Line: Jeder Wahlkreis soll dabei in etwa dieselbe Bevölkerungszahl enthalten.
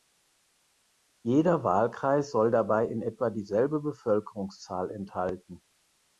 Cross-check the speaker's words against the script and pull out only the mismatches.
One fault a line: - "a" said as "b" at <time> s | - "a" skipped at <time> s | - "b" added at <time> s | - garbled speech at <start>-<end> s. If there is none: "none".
none